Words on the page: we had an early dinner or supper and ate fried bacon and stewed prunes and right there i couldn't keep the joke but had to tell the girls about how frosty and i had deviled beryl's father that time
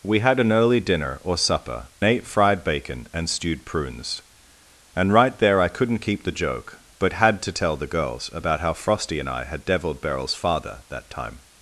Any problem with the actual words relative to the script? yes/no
yes